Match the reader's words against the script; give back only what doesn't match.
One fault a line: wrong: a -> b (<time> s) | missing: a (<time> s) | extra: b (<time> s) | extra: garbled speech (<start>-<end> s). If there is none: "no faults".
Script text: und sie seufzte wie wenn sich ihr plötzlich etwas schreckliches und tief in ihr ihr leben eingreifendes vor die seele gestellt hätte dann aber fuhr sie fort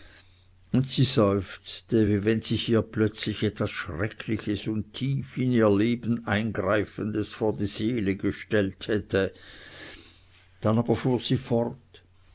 missing: ihr (5.7 s)